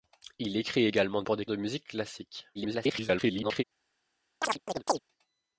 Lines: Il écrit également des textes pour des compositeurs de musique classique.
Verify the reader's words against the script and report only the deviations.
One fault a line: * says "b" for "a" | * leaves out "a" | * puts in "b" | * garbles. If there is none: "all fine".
* leaves out "des textes"
* leaves out "compositeurs"
* garbles